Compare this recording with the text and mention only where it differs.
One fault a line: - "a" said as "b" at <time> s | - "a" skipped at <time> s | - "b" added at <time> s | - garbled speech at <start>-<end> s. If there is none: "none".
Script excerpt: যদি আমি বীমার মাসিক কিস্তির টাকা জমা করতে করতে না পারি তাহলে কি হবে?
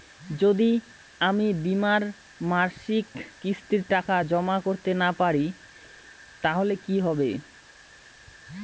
- "করতে" skipped at 4.9 s